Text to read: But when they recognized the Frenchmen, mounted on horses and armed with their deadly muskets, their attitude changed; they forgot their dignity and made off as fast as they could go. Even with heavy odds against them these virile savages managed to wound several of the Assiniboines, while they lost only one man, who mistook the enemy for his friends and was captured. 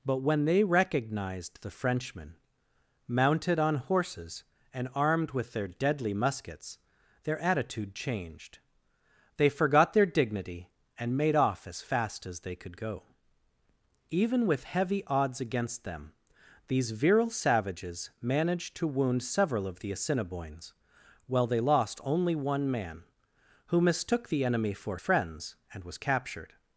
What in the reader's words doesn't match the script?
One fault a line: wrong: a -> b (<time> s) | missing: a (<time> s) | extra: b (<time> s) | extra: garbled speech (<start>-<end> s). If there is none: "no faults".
missing: his (25.0 s)